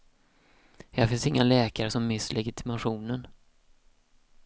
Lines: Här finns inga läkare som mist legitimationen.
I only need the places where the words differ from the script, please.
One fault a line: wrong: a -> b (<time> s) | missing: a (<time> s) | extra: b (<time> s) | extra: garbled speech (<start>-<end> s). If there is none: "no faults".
no faults